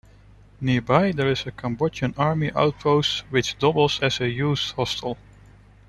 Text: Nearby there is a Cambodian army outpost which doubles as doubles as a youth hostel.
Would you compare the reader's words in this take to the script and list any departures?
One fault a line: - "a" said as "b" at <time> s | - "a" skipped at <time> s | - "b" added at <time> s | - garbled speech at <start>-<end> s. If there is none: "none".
- "doubles as" skipped at 4.2 s